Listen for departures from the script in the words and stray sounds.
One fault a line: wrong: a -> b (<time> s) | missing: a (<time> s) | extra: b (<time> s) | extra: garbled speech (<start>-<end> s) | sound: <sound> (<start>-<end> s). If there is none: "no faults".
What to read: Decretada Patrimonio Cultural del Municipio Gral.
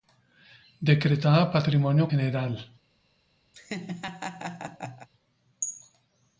missing: Cultural del Municipio (2.1 s)
sound: laugh (3.5-5.1 s)